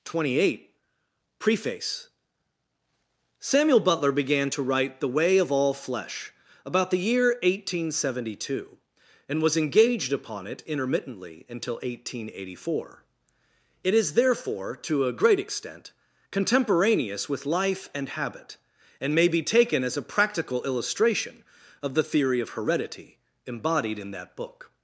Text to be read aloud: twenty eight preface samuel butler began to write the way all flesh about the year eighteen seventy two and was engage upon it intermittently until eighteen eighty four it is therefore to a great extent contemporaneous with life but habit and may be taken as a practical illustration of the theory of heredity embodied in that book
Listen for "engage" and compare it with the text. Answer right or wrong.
wrong